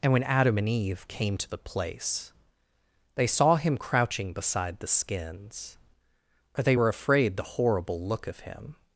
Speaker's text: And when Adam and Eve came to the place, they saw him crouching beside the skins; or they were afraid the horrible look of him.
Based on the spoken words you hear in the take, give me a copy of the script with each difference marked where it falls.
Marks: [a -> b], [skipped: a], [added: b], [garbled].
And when Adam and Eve came to the place, they saw him crouching beside the skins; or they were afraid the horrible look of him.